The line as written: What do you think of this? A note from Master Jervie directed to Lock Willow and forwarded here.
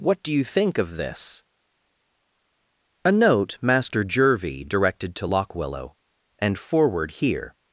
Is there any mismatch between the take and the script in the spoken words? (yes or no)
yes